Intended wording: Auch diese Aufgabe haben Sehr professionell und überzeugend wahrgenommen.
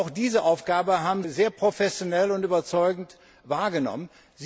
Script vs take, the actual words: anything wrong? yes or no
no